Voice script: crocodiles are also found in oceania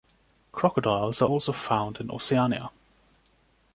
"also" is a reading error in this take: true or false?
false